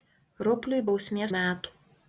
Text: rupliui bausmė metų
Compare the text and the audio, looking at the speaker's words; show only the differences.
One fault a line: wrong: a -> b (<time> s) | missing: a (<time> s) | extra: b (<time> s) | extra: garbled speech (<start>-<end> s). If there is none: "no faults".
no faults